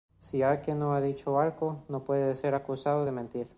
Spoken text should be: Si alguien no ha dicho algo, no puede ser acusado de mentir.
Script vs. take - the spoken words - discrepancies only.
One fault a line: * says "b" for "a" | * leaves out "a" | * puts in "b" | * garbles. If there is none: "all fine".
all fine